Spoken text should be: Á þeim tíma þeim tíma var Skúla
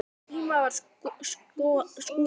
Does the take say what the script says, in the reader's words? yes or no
no